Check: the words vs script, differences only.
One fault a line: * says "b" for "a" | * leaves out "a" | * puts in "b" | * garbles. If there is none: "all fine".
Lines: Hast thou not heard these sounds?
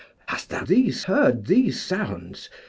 * says "these" for "not"